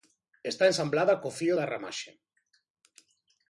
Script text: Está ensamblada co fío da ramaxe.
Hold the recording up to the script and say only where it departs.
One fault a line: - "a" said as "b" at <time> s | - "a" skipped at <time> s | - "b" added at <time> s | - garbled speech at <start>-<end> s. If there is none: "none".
none